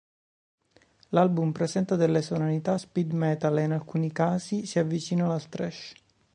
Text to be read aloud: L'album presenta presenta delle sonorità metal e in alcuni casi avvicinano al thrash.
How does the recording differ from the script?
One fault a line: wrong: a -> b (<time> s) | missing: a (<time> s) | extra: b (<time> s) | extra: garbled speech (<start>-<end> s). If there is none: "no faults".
missing: presenta (1.9 s)
extra: speed (2.8 s)
extra: si (4.7 s)